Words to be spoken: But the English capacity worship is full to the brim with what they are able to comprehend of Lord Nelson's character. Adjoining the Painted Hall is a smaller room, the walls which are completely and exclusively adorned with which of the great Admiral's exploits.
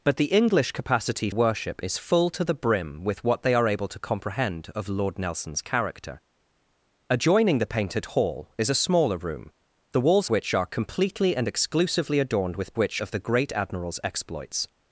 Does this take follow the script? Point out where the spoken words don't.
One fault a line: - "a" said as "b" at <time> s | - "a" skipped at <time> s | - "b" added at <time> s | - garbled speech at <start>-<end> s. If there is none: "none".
none